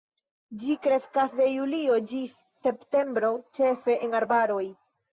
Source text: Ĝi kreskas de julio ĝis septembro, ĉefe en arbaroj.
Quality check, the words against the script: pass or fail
pass